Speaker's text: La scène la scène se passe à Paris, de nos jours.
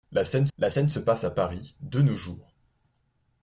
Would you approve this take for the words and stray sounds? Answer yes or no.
yes